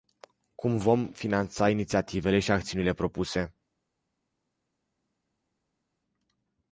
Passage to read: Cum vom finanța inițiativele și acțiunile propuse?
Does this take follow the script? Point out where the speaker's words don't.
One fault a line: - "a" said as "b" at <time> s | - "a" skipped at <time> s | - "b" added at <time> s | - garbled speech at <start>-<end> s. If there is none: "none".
none